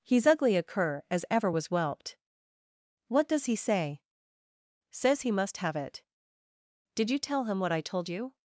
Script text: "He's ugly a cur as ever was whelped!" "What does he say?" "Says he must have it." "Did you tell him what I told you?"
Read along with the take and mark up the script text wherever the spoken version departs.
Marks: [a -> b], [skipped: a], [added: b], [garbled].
"He's ugly a cur as ever was whelped!" "What does he say?" "Says he must have it." "Did you tell him what I told you?"